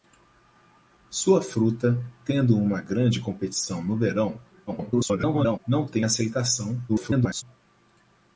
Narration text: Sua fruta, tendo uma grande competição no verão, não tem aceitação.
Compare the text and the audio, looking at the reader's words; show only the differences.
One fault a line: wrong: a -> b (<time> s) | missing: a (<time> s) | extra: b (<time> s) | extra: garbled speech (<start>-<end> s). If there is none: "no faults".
extra: garbled speech (4.7-5.6 s)
extra: garbled speech (6.9-7.4 s)